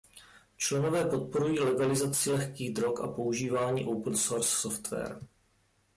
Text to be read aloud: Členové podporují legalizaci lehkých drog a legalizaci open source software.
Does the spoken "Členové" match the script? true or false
true